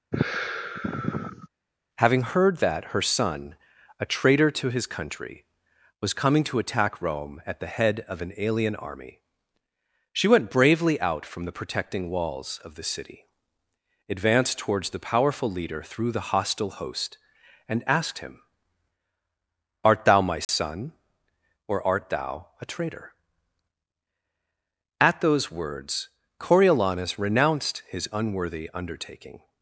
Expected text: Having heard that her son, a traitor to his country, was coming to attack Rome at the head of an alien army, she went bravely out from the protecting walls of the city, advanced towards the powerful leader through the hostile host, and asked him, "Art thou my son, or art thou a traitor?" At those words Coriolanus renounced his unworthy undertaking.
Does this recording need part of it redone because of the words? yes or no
no